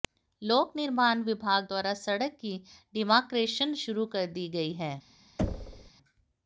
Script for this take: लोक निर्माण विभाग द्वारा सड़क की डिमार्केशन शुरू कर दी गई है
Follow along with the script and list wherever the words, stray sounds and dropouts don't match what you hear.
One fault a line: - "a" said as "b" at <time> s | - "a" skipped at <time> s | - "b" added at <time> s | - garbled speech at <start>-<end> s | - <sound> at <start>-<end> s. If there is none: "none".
- thud at 5.4-5.9 s